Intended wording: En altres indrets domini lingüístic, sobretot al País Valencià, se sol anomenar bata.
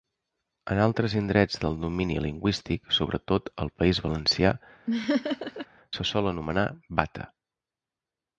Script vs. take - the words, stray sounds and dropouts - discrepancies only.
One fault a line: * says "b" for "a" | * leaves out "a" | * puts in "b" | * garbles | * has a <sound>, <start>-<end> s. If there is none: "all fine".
* puts in "del"
* has a laugh, 4.9-5.7 s